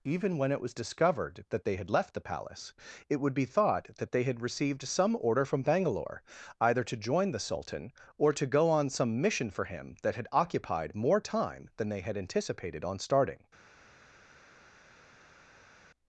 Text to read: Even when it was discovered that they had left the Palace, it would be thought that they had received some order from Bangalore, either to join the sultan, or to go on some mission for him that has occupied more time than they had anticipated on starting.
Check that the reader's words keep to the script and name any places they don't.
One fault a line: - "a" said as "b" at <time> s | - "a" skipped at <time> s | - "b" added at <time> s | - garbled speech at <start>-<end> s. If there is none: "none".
- "has" said as "had" at 10.2 s